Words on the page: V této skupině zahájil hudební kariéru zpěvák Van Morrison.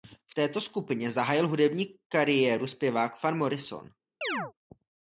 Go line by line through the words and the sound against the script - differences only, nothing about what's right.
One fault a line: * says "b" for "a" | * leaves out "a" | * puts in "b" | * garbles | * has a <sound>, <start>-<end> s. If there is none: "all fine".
* has a chirp, 4.2-4.5 s